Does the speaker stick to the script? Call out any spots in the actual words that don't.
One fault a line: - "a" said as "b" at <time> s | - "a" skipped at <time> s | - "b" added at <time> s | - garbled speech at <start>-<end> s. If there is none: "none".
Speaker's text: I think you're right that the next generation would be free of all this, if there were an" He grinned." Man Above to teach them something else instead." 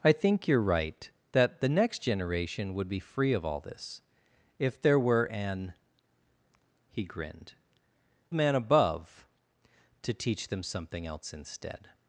none